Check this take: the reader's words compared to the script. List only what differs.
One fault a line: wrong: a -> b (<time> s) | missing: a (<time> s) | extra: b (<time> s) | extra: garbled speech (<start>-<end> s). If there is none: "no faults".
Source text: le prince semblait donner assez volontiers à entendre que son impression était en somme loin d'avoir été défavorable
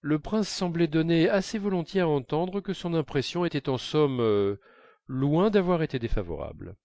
no faults